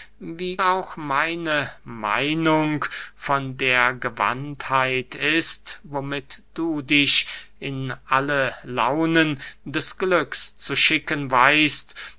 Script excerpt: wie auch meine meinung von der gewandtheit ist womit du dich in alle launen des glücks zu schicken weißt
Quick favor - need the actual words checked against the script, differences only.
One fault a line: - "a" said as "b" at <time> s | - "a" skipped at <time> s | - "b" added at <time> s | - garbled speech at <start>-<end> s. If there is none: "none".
none